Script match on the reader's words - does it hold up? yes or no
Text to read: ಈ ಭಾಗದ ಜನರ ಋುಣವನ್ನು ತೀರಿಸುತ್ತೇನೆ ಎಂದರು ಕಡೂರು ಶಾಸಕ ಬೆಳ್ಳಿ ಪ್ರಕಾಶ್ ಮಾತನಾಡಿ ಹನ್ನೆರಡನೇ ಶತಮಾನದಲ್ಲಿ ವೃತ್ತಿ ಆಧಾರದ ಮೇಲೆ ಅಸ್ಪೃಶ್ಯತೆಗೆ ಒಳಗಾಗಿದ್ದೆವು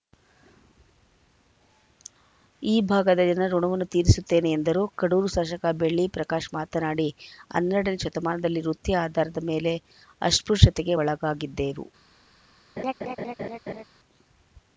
yes